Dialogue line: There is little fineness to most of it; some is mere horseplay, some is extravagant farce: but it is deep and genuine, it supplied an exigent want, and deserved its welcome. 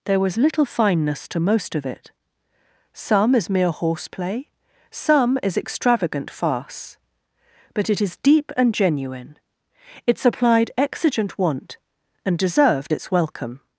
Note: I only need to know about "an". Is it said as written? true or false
false